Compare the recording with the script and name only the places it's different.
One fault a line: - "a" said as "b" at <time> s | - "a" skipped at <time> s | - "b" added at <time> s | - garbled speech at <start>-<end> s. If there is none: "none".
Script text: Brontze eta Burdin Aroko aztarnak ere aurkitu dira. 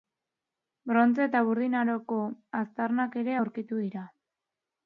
none